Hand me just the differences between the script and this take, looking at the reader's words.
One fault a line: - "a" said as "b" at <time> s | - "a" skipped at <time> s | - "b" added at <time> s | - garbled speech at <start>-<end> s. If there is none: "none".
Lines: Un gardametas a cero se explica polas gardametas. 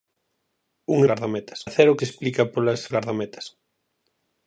none